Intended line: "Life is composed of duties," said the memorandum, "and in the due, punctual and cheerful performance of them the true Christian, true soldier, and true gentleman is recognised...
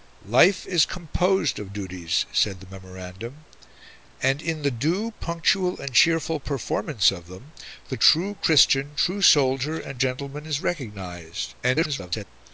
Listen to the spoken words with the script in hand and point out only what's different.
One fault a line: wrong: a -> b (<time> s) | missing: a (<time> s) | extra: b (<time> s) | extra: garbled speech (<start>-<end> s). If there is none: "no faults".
missing: true (10.0 s)
extra: garbled speech (11.6-12.3 s)